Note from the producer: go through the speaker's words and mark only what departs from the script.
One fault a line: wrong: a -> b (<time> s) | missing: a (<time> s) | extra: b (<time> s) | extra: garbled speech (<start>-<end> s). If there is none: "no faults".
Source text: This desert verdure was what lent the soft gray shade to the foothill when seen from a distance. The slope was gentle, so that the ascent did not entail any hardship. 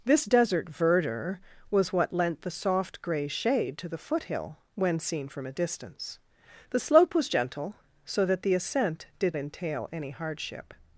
missing: not (9.4 s)